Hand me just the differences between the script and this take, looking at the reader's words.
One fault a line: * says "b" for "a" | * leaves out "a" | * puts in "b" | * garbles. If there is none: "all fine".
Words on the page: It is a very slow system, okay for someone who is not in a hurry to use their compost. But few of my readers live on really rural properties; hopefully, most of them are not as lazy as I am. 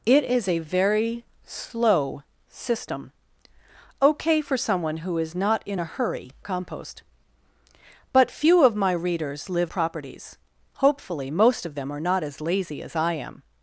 * leaves out "to use their"
* leaves out "on really rural"